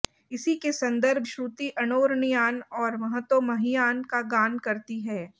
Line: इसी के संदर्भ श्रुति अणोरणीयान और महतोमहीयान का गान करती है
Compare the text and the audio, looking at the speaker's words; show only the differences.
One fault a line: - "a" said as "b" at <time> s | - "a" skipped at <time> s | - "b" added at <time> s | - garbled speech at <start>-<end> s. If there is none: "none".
none